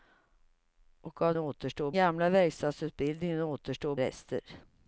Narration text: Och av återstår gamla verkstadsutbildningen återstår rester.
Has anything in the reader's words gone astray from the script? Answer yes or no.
no